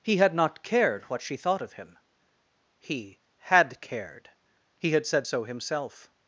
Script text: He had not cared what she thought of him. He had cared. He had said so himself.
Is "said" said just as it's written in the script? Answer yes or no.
yes